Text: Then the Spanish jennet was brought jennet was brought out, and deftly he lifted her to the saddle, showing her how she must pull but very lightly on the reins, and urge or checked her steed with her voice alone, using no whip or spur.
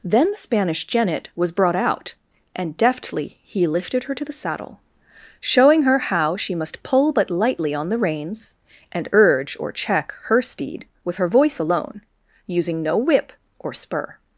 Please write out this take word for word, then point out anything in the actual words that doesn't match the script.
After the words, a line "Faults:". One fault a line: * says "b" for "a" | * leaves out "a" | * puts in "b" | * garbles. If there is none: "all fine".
Then the Spanish jennet was brought out, and deftly he lifted her to the saddle, showing her how she must pull but lightly on the reins, and urge or check her steed with her voice alone, using no whip or spur.
Faults:
* leaves out "jennet was brought"
* leaves out "very"
* says "check" for "checked"